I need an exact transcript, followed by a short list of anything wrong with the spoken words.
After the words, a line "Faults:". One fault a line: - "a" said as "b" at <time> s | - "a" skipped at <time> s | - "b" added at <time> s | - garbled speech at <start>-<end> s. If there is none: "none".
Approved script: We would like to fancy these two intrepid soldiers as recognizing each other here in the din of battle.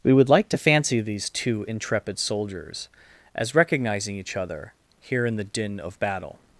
We would like to fancy these two intrepid soldiers as recognizing each other here in the din of battle.
Faults:
none